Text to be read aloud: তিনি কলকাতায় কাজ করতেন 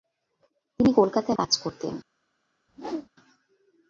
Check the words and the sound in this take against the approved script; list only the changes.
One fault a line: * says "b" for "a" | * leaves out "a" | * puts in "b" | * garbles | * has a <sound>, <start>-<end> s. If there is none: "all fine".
* has a whoosh, 2.7-3.1 s